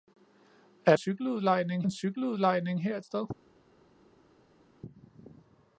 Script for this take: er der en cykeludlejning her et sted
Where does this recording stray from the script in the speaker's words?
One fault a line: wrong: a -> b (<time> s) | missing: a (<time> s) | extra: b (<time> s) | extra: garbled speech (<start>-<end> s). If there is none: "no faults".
wrong: der -> cykeludlejning (0.9 s)